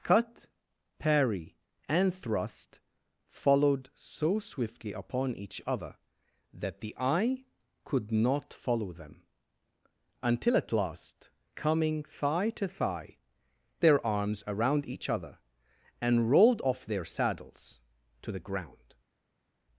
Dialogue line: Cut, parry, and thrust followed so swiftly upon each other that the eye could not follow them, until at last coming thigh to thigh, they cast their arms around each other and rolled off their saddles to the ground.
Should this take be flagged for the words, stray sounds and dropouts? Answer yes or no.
yes